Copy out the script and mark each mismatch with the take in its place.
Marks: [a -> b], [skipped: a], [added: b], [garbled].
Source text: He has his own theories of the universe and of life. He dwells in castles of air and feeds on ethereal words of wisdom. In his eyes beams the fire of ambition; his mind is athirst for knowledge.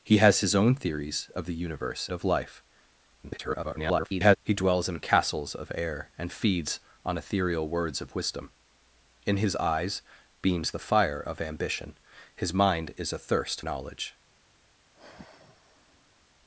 He has his own theories of the universe [skipped: and] of life. [garbled] He dwells in castles of air and feeds on ethereal words of wisdom. In his eyes beams the fire of ambition; his mind is athirst [skipped: for] knowledge.